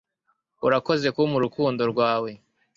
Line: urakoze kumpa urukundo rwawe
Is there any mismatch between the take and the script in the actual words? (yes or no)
no